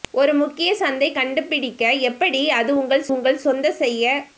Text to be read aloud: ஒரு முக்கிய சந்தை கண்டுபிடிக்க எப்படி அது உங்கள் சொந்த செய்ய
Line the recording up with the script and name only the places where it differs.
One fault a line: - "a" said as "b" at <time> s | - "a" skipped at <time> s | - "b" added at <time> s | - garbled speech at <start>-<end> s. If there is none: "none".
- "உங்கள்" added at 3.1 s